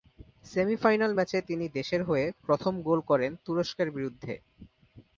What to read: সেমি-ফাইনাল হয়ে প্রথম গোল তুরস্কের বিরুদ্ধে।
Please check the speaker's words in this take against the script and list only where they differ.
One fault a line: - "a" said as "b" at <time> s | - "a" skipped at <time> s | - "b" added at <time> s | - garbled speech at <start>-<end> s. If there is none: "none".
- "ম্যাচে তিনি দেশের" added at 1.1 s
- "করেন" added at 3.0 s